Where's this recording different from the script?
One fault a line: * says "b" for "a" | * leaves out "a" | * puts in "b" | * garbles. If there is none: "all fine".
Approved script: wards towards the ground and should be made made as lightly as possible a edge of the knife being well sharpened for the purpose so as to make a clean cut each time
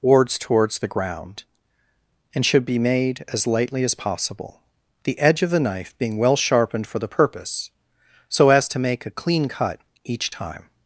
* leaves out "made"
* says "the" for "a"